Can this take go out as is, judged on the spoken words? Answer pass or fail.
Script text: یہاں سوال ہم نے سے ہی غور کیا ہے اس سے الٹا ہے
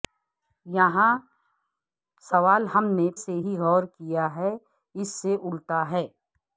pass